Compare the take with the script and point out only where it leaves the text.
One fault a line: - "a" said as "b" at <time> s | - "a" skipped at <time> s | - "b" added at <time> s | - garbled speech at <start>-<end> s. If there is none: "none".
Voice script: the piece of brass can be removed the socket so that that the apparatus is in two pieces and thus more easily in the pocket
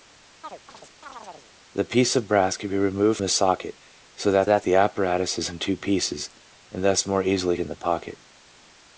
none